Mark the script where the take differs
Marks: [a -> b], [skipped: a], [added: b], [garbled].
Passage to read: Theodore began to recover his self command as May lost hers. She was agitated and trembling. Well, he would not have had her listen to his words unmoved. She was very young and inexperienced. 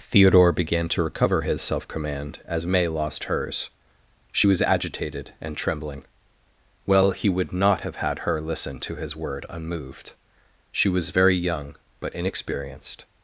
Theodore began to recover his self command as May lost hers. She was agitated and trembling. Well, he would not have had her listen to his [words -> word] unmoved. She was very young [and -> but] inexperienced.